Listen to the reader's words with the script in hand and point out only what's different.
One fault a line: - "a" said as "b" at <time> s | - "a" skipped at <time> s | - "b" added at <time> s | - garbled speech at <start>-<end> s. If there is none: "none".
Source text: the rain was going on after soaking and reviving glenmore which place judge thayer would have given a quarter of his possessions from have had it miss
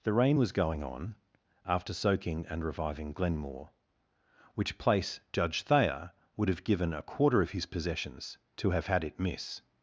- "from" said as "to" at 8.6 s